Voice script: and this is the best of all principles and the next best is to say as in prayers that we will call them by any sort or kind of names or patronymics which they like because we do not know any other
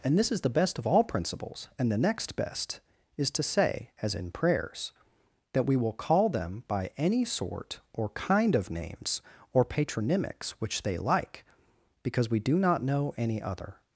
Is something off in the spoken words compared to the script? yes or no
no